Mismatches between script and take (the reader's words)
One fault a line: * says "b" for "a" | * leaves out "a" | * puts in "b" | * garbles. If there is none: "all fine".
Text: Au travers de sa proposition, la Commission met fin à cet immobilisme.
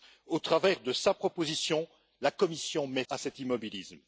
* leaves out "fin"